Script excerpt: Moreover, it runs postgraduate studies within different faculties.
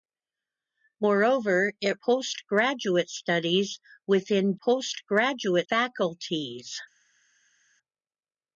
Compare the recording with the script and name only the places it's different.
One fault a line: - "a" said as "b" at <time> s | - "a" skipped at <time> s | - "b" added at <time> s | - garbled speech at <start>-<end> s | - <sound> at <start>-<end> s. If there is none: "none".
- "runs" skipped at 2.0 s
- "different" said as "postgraduate" at 4.5 s